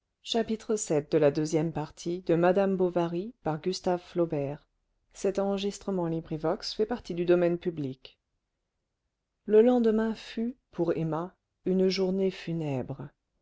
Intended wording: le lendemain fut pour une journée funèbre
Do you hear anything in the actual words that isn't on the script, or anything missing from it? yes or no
yes